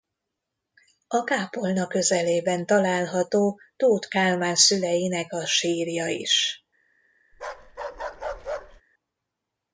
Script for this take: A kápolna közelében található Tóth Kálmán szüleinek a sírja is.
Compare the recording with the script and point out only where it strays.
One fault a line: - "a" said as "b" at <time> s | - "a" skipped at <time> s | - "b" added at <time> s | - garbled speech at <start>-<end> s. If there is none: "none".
none